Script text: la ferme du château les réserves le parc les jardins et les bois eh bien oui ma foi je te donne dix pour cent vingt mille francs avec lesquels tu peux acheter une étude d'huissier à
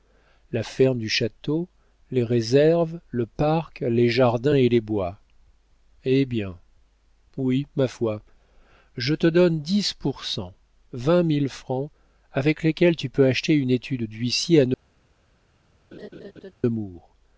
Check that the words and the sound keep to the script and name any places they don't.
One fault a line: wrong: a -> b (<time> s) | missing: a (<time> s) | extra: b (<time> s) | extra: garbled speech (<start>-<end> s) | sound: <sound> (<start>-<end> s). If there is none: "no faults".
sound: laugh (15.9-16.5 s)